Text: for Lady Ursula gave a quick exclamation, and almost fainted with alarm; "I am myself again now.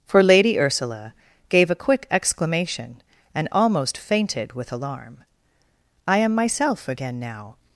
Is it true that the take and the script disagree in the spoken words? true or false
false